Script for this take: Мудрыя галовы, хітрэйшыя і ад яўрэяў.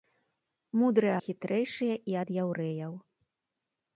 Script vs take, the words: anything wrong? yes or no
yes